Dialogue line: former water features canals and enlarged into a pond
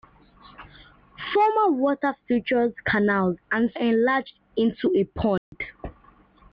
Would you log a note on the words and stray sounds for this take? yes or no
yes